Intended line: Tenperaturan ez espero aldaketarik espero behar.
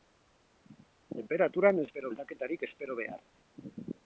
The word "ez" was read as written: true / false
true